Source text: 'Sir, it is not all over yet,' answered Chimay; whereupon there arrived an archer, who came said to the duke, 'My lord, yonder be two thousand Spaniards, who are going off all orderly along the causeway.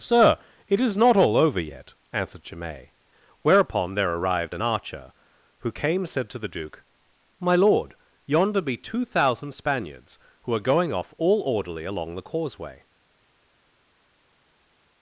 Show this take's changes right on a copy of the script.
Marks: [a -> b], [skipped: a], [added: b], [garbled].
'Sir, it is not all over yet,' answered Chimay; whereupon there arrived an archer, who came said to the duke, 'My lord, yonder be two thousand Spaniards, who are going off all orderly along the causeway.